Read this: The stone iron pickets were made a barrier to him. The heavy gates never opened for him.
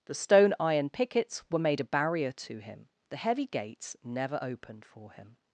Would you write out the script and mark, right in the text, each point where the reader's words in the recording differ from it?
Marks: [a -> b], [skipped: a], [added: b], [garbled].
The stone iron pickets were made a barrier to him. The heavy gates never opened for him.